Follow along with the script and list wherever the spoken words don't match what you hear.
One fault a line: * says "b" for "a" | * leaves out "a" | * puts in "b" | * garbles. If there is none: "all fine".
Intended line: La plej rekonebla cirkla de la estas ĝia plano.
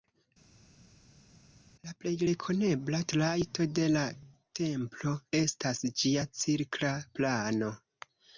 * says "trajto" for "cirkla"
* puts in "templo"
* puts in "cirkla"